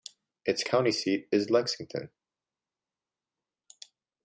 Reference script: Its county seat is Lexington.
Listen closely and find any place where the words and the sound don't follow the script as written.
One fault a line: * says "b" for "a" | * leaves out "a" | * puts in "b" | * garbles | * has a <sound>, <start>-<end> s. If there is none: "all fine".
all fine